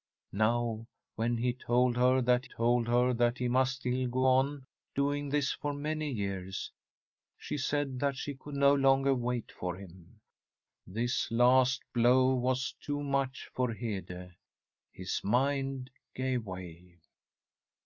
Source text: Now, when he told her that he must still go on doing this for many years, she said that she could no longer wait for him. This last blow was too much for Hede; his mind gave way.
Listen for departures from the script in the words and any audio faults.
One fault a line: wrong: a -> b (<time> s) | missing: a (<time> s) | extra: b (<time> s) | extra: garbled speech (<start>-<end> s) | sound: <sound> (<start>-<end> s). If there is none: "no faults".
extra: told her that (2.4 s)